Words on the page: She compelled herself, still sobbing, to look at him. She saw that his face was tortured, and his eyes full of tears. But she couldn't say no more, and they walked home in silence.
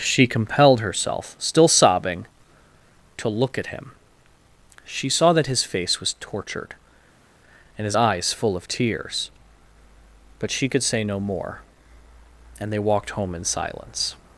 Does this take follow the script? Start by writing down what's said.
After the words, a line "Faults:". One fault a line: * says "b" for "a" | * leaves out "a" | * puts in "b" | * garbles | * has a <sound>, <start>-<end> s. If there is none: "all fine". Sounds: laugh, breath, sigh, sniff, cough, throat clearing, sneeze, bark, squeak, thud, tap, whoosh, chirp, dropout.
She compelled herself, still sobbing, to look at him. She saw that his face was tortured, and his eyes full of tears. But she could say no more, and they walked home in silence.
Faults:
* says "could" for "couldn't"